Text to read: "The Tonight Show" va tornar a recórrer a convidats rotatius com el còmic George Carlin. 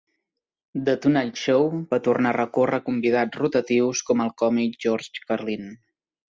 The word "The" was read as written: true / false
true